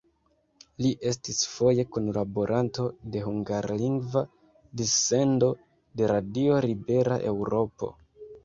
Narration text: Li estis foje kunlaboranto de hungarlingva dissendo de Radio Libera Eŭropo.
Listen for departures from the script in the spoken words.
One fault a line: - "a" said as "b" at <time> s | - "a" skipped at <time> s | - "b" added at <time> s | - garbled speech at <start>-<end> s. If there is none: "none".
none